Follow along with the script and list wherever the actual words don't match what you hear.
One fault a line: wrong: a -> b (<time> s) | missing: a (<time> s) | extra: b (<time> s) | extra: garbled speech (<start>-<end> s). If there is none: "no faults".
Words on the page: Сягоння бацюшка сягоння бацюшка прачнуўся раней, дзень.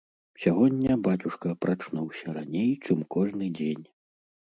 wrong: сягоння бацюшка прачнуўся раней -> прачнуўся раней чым кожны (1.6 s)